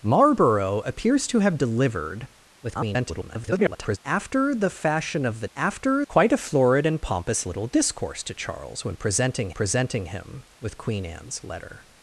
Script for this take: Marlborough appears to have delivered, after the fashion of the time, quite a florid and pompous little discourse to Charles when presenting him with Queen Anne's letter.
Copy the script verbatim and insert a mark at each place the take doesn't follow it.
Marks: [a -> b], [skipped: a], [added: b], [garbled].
Marlborough appears to have delivered, [garbled] after the fashion of the [time, -> after] quite a florid and pompous little discourse to Charles when presenting [added: presenting] him with Queen Anne's letter.